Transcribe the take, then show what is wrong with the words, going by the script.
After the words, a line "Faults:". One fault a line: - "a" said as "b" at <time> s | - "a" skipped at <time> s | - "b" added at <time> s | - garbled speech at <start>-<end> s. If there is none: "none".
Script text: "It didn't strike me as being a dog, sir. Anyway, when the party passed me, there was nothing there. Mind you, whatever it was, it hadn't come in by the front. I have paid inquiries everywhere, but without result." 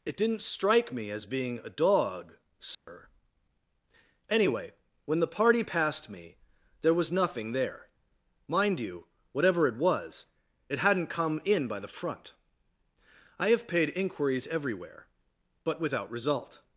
"It didn't strike me as being a dog, sir. Anyway, when the party passed me, there was nothing there. Mind you, whatever it was, it hadn't come in by the front. I have paid inquiries everywhere, but without result."
Faults:
none